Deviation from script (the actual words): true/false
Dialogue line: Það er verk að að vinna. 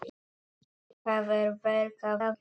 false